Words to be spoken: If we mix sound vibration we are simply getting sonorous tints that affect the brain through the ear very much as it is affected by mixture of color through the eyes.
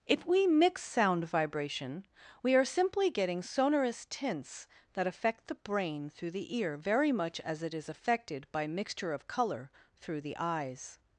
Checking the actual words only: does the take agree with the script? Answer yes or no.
yes